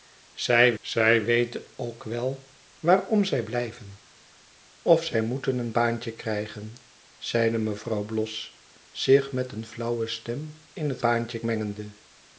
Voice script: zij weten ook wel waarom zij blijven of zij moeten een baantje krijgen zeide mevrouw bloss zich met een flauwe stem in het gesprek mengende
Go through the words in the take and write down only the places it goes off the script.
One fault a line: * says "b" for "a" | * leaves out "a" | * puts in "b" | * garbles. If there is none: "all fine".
* puts in "zij"
* says "baantje" for "gesprek"